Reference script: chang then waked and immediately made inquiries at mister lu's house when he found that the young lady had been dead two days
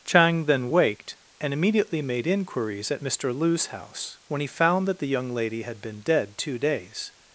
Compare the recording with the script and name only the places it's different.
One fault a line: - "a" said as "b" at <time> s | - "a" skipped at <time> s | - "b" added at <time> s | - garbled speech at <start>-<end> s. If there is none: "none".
none